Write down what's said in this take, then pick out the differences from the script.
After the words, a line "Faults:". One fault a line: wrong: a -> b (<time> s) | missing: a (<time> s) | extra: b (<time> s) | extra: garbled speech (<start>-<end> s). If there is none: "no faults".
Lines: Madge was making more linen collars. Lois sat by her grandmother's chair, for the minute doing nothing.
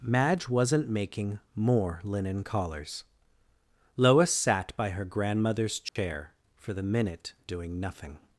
Madge wasn't making more linen collars. Lois sat by her grandmother's chair, for the minute doing nothing.
Faults:
wrong: was -> wasn't (0.5 s)